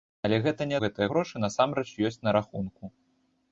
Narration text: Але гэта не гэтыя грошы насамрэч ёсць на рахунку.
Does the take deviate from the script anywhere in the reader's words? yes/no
no